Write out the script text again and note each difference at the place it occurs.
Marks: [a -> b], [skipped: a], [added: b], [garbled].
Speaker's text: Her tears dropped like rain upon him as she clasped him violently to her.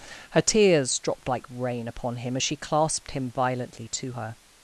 Her tears dropped like rain upon him as she clasped him violently to her.